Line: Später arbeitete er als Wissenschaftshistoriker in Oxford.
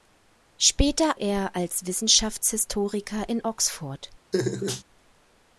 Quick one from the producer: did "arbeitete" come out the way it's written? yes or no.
no